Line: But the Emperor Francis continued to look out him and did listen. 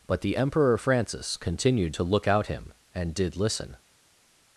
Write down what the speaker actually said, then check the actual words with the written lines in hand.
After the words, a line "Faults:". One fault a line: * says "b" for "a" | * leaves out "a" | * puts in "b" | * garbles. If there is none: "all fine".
But the Emperor Francis continued to look out him and did listen.
Faults:
all fine